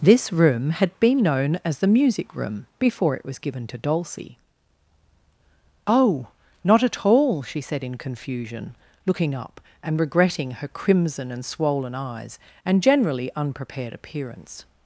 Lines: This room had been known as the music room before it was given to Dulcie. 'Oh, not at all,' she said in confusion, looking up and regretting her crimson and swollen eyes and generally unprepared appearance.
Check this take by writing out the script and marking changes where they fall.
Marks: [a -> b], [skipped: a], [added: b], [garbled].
This room had been known as the music room before it was given to Dulcie. 'Oh, not at all,' she said in confusion, looking up and regretting her crimson and swollen eyes and generally unprepared appearance.